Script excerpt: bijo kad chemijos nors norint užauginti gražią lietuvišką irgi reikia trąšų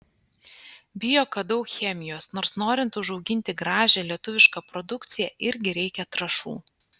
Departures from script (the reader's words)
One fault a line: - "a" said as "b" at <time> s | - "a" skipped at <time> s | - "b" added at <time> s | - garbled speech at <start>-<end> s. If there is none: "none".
- "daug" added at 1.5 s
- "produkciją" added at 4.7 s